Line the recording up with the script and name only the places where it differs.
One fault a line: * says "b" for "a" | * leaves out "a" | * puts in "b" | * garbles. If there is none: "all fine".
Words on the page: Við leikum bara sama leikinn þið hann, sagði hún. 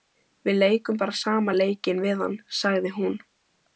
* says "við" for "þið"